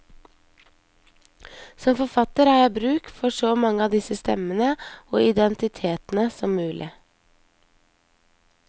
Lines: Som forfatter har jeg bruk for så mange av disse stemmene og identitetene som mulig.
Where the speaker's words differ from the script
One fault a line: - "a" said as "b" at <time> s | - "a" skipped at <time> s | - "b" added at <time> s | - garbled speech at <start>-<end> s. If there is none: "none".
none